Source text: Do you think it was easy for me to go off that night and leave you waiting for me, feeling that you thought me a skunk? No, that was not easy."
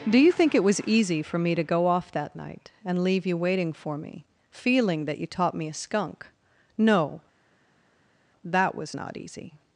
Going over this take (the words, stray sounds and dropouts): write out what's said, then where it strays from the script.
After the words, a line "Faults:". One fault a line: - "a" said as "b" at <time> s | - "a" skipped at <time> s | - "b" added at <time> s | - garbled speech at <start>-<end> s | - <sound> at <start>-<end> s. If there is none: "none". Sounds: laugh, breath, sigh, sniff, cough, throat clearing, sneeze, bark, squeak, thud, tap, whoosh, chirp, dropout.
Do you think it was easy for me to go off that night and leave you waiting for me, feeling that you taught me a skunk? No, that was not easy."
Faults:
- "thought" said as "taught" at 5.3 s